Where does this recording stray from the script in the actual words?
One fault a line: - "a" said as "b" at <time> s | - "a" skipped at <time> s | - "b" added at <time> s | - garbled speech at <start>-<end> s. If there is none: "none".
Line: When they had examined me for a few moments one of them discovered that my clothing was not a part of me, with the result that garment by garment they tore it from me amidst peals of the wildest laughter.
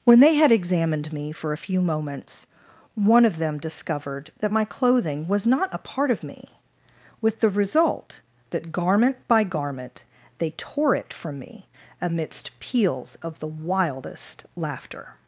none